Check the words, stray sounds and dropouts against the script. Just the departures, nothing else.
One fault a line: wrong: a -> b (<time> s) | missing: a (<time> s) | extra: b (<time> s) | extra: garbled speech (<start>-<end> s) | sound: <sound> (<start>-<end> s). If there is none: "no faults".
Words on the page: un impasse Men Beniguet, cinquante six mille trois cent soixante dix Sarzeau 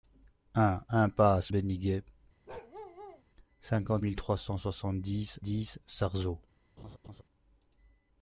missing: Men (1.5 s)
sound: bark (2.5-3.2 s)
missing: six (4.0 s)
extra: dix (5.4 s)
sound: laugh (6.8-7.2 s)